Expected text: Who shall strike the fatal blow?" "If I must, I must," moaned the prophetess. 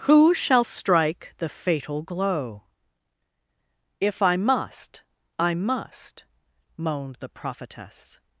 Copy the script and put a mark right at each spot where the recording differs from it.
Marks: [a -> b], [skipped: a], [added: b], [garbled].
Who shall strike the fatal [blow?" -> glow] "If I must, I must," moaned the prophetess.